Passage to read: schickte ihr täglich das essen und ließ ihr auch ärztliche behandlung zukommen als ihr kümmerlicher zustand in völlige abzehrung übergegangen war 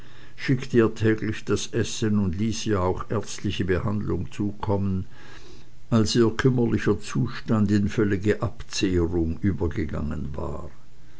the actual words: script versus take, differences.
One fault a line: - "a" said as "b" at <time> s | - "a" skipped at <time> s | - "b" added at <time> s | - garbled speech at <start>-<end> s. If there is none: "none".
none